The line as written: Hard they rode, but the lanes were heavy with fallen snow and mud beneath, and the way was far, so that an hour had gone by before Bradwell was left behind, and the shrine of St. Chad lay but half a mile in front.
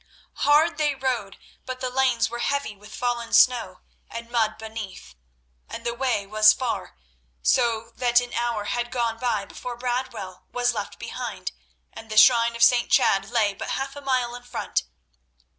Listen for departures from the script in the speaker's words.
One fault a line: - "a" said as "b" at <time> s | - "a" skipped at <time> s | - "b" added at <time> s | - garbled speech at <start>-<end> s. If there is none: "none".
none